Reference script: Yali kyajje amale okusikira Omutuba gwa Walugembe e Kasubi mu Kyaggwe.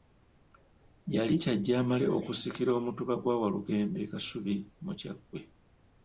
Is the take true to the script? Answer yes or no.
yes